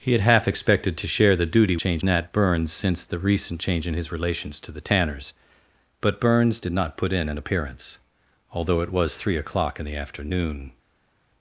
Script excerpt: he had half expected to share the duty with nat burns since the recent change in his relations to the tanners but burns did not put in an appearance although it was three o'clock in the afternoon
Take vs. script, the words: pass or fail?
fail